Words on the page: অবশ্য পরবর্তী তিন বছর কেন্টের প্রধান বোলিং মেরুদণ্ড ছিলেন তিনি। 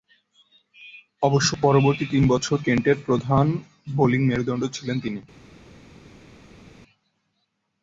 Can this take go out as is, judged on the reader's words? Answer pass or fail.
pass